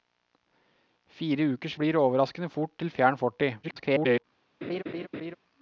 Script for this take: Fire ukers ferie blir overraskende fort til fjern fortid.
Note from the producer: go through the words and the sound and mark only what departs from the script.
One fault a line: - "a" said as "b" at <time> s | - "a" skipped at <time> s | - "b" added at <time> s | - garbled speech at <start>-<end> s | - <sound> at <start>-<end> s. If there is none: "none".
- "ferie" skipped at 1.8 s
- garbled speech at 3.6-4.2 s
- laugh at 4.6-5.4 s